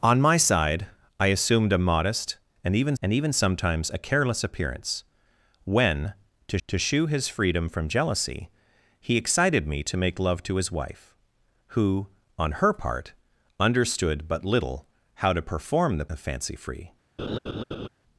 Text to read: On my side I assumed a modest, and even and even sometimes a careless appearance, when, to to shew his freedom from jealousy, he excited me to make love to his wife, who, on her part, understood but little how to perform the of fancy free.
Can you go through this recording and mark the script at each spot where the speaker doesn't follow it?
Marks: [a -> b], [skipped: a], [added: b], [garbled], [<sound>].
On my side I assumed a modest, and even and even sometimes a careless appearance, when, to to shew his freedom from jealousy, he excited me to make love to his wife, who, on her part, understood but little how to perform the of fancy free. [laugh]